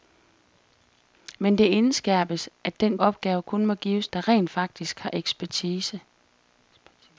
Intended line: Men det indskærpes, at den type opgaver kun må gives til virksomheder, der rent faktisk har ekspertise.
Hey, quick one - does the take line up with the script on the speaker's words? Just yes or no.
no